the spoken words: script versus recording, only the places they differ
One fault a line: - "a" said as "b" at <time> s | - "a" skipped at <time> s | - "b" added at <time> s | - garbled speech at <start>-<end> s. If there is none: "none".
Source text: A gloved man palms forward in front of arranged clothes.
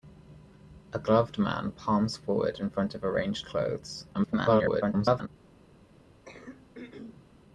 - garbled speech at 4.1-5.3 s